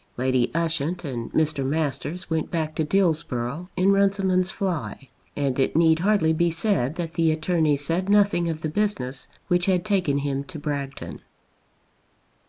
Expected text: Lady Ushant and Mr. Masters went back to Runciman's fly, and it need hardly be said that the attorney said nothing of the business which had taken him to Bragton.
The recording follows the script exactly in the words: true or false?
false